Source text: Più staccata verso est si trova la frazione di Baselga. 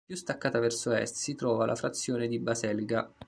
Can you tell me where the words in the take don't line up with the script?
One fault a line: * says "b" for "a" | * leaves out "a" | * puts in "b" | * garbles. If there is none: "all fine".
all fine